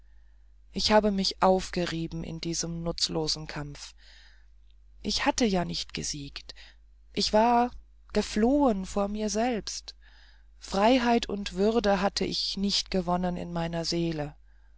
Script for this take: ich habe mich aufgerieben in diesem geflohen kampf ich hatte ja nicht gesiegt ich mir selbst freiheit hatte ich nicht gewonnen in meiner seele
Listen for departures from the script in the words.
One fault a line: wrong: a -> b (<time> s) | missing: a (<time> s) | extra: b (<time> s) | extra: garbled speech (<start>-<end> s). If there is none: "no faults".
wrong: geflohen -> nutzlosen (2.8 s)
extra: war geflohen vor (7.3 s)
extra: und würde (11.3 s)